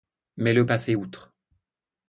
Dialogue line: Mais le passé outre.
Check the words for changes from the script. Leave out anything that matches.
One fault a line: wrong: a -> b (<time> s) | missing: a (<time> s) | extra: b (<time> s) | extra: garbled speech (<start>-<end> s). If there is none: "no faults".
no faults